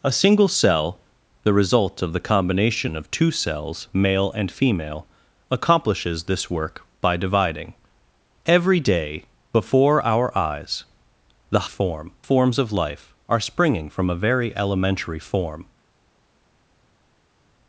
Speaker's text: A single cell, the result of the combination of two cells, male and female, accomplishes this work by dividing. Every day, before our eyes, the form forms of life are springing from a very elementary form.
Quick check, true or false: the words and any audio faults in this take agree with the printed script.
true